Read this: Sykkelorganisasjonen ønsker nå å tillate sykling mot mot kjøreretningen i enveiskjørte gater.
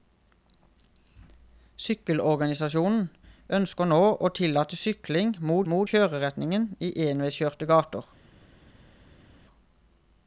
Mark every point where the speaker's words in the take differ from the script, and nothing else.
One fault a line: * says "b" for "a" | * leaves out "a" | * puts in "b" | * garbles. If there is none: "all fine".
all fine